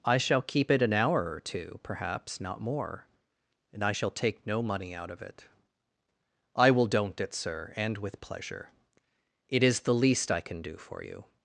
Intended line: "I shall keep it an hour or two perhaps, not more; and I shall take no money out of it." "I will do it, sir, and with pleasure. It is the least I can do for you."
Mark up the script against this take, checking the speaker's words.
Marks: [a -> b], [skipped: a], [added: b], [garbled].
"I shall keep it an hour or two perhaps, not more; and I shall take no money out of it." "I will [do -> don't] it, sir, and with pleasure. It is the least I can do for you."